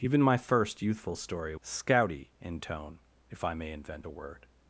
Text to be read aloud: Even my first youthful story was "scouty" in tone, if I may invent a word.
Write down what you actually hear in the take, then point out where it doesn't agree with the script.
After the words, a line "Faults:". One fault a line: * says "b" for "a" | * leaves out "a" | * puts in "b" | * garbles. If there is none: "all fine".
Even my first youthful story "scouty" in tone, if I may invent a word.
Faults:
* leaves out "was"